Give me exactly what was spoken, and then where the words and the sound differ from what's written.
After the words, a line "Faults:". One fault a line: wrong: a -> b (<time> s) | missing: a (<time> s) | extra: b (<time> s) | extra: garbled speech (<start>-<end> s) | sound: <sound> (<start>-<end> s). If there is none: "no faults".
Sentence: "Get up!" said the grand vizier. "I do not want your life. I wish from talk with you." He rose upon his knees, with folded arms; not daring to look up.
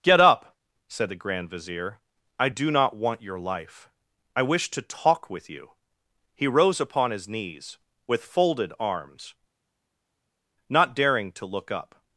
"Get up!" said the grand vizier. "I do not want your life. I wish to talk with you." He rose upon his knees, with folded arms; not daring to look up.
Faults:
wrong: from -> to (4.7 s)